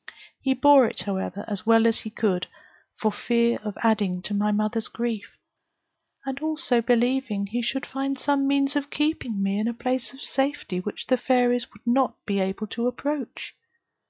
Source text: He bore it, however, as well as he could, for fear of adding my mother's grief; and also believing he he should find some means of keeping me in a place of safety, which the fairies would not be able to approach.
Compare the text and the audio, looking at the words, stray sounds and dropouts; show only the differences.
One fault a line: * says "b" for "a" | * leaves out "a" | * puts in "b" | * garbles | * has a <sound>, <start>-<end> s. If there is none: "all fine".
* puts in "to"
* leaves out "he"